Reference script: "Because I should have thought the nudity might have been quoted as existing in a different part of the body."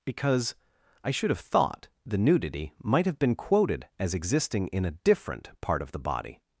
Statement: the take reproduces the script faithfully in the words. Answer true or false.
true